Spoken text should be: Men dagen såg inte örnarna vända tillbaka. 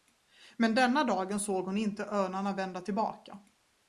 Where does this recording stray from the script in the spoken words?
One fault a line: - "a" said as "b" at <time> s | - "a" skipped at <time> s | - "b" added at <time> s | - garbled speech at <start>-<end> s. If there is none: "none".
- "denna" added at 0.8 s
- "hon" added at 1.6 s